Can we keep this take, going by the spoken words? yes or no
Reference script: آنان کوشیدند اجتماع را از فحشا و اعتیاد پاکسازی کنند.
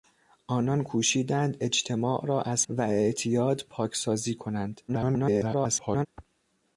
no